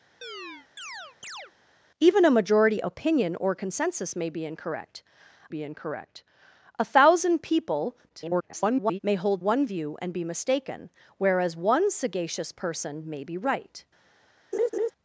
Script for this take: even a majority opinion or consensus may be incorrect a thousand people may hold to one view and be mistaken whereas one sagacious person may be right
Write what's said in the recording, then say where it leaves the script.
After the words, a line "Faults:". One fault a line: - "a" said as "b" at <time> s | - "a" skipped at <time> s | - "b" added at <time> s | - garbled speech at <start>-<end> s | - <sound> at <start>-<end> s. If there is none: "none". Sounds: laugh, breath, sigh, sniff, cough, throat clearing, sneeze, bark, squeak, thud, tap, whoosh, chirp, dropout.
even a majority opinion or consensus may be incorrect be incorrect a thousand people [garbled] may hold one view and be mistaken whereas one sagacious person may be right
Faults:
- chirp at 0.2-1.5 s
- "be incorrect" added at 5.5 s
- garbled speech at 8.1-9.0 s
- "to" skipped at 9.4 s
- laugh at 14.5-14.9 s